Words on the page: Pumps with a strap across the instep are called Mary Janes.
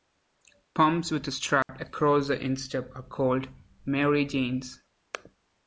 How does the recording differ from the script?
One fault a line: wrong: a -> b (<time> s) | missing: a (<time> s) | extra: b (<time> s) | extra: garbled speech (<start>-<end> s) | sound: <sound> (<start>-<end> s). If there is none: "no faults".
sound: dropout (1.6-1.7 s)